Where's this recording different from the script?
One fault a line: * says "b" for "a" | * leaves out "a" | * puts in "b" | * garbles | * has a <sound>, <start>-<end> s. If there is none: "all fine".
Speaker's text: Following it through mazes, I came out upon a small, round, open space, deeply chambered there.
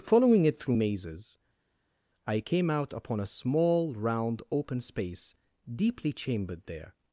all fine